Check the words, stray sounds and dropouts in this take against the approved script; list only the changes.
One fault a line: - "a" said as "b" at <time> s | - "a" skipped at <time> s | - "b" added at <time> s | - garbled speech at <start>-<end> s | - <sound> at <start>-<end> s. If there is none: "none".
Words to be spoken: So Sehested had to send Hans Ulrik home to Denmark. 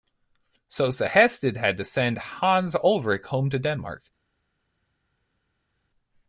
none